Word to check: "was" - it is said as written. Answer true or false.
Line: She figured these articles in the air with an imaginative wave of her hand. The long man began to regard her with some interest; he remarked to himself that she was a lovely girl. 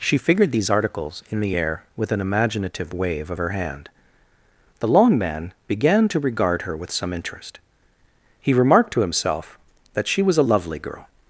true